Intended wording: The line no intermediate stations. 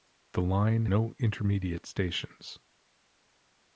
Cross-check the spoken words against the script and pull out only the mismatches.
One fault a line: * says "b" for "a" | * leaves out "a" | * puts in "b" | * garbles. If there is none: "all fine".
all fine